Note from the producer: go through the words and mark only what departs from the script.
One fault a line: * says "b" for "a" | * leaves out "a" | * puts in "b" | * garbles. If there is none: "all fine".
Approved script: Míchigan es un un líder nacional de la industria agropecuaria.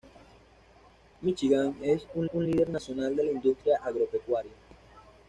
all fine